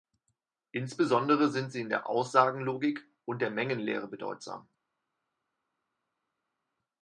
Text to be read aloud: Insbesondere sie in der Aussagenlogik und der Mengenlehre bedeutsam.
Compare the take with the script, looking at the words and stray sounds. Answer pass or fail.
fail